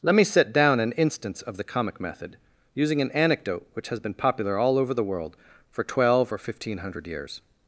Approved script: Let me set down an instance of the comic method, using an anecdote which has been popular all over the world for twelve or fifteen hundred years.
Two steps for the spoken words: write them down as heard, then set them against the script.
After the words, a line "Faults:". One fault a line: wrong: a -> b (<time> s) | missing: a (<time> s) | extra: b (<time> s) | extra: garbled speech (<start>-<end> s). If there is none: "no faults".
Let me set down an instance of the comic method, using an anecdote which has been popular all over the world for twelve or fifteen hundred years.
Faults:
no faults